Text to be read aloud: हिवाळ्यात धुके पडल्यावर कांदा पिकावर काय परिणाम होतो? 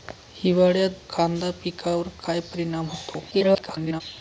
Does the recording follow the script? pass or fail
fail